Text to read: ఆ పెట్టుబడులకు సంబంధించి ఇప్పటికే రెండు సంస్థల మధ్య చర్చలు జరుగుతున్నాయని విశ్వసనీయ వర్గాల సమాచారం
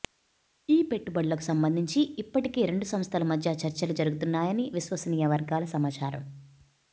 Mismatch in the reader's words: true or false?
true